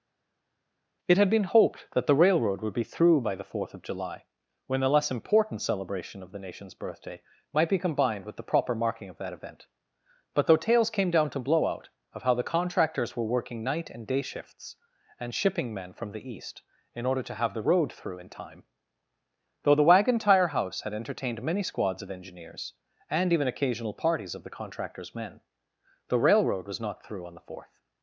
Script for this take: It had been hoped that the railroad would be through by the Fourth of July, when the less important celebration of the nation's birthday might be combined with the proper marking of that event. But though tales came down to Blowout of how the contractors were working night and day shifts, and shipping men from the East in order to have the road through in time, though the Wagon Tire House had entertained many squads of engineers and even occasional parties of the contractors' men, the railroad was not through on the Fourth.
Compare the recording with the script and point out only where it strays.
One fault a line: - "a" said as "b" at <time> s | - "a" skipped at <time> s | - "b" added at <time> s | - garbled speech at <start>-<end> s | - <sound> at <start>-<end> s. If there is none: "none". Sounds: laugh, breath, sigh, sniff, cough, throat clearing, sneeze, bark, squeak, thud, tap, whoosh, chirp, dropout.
none